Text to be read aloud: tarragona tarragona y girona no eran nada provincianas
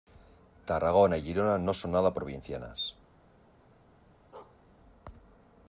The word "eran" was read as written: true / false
false